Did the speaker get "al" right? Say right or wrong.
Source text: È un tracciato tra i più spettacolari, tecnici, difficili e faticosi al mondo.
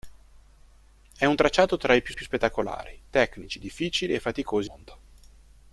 wrong